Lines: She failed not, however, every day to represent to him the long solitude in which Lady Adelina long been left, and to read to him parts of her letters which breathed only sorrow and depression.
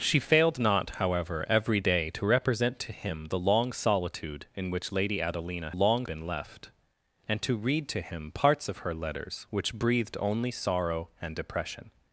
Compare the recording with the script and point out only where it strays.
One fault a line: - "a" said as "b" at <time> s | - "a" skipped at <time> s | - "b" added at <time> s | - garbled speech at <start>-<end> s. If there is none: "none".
none